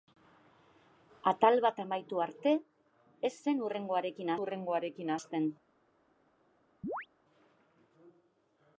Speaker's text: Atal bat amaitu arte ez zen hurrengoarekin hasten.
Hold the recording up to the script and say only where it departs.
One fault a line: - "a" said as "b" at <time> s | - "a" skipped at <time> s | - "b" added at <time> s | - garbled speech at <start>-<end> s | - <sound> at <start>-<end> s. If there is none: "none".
- "hurrengoarekin" added at 4.4 s
- chirp at 6.8-7.1 s